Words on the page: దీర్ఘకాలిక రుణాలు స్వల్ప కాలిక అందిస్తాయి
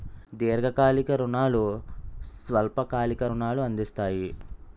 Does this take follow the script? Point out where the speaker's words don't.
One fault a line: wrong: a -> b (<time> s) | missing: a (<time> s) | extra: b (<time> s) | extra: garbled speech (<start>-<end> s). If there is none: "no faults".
extra: రుణాలు (3.3 s)